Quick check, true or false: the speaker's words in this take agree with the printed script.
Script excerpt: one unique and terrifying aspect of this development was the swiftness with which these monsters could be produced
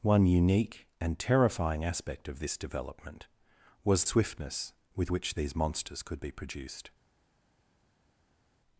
false